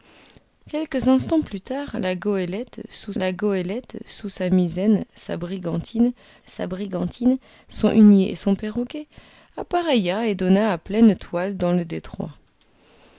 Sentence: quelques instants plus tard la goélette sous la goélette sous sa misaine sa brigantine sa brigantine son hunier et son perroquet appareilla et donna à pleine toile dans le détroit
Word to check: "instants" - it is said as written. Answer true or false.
true